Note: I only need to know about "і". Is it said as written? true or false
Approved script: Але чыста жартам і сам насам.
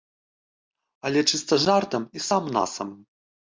true